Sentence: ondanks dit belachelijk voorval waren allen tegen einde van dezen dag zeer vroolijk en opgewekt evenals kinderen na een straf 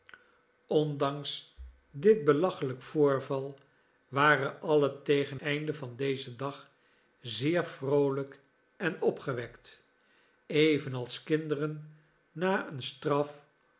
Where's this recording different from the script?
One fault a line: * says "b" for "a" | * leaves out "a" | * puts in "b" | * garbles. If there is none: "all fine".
all fine